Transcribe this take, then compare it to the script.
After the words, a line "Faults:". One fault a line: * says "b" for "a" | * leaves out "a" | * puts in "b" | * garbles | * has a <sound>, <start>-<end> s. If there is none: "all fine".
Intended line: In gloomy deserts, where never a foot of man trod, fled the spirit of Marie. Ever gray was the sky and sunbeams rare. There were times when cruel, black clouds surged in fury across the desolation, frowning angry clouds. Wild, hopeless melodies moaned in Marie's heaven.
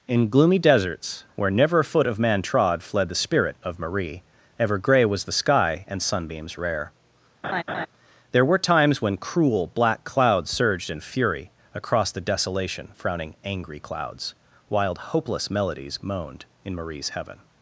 In gloomy deserts, where never a foot of man trod, fled the spirit of Marie. Ever gray was the sky and sunbeams rare. There were times when cruel, black clouds surged in fury across the desolation, frowning angry clouds. Wild, hopeless melodies moaned in Marie's heaven.
Faults:
* has a laugh, 7.4-7.9 s